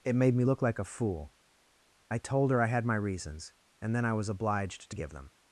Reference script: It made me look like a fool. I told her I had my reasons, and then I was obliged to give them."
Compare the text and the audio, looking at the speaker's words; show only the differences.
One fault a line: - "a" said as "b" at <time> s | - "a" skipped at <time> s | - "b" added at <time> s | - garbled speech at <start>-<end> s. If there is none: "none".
none